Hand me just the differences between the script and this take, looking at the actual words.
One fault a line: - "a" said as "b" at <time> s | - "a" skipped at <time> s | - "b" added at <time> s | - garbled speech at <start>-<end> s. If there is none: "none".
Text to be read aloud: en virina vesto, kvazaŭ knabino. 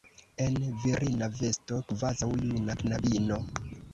- "juna" added at 2.5 s